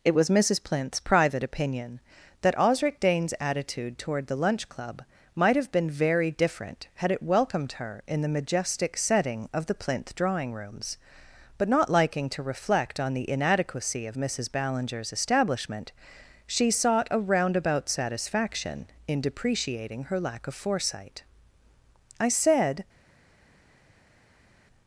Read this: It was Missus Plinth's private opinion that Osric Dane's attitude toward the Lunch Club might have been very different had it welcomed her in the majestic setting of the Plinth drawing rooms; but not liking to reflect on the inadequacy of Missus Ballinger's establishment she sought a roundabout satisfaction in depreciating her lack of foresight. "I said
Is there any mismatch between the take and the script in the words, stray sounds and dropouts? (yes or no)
no